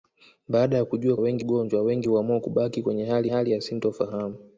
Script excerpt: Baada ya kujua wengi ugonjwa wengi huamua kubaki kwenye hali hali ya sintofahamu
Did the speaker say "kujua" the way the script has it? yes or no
yes